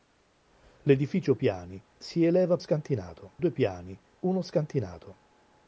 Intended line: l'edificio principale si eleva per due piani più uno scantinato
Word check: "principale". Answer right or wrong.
wrong